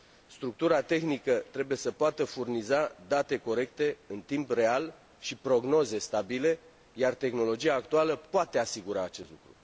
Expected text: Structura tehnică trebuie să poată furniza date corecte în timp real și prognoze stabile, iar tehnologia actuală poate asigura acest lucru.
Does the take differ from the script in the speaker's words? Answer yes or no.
no